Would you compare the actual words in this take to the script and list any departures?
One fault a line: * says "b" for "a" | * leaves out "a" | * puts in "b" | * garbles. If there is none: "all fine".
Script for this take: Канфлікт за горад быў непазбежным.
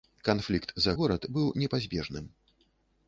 all fine